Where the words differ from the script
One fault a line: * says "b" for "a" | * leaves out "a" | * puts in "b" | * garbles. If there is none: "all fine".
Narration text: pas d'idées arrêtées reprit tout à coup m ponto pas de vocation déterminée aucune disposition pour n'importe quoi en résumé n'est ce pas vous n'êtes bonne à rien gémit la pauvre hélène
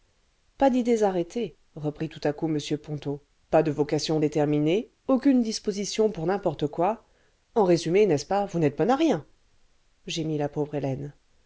all fine